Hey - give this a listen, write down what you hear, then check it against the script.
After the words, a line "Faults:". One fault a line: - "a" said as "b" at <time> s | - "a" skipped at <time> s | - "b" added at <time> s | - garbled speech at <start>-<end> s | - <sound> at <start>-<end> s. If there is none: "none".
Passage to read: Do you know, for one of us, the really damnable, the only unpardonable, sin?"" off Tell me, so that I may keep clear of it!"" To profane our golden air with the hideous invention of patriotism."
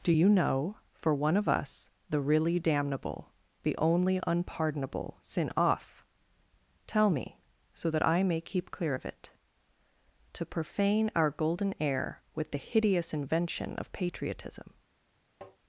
Do you know, for one of us, the really damnable, the only unpardonable, sin?"" off Tell me, so that I may keep clear of it!"" To profane our golden air with the hideous invention of patriotism."
Faults:
- tap at 15.4-15.6 s